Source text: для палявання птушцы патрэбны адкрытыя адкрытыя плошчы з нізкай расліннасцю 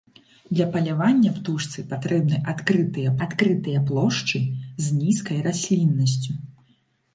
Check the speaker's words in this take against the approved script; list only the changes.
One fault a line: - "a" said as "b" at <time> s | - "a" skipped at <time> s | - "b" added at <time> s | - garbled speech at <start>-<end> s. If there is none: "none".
none